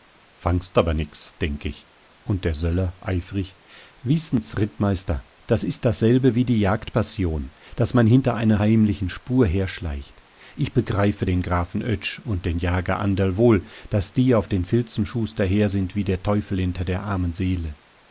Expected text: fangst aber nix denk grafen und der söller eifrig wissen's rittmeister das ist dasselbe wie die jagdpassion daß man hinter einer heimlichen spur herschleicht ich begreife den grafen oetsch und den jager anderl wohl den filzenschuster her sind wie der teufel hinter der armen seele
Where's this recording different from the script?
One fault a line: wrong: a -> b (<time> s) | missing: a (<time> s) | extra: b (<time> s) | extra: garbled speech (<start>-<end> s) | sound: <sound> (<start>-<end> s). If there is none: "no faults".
wrong: grafen -> ich (1.6 s)
extra: daß die auf (13.9 s)